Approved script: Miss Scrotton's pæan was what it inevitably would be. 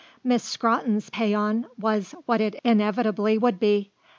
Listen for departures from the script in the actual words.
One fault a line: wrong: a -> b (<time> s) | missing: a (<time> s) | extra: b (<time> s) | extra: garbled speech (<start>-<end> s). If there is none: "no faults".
no faults